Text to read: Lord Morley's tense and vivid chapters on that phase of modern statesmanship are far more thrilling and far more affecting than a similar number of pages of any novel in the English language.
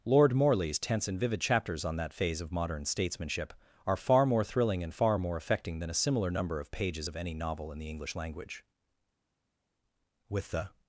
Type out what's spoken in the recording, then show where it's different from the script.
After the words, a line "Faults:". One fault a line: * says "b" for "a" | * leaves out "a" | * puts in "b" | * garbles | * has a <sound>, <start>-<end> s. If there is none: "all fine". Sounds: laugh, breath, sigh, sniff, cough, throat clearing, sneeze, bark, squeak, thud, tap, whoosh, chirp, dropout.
Lord Morley's tense and vivid chapters on that phase of modern statesmanship are far more thrilling and far more affecting than a similar number of pages of any novel in the English language. With the
Faults:
* puts in "With the"